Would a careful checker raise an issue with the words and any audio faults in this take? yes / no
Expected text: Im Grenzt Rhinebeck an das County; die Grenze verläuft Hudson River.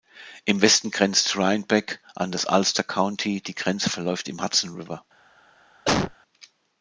yes